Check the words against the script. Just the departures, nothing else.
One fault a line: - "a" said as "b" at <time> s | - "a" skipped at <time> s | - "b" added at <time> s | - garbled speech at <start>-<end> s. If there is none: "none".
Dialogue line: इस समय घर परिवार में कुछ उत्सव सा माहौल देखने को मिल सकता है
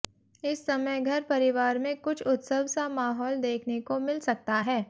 none